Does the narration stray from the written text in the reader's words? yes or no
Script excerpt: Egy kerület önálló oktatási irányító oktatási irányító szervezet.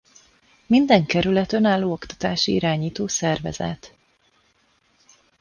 yes